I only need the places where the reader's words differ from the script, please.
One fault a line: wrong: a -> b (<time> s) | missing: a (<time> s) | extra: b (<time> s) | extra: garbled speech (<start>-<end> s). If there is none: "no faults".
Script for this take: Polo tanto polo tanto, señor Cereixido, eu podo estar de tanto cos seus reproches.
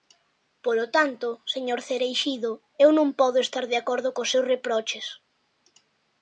missing: polo tanto (1.3 s)
extra: non (3.0 s)
wrong: tanto -> acordo (3.8 s)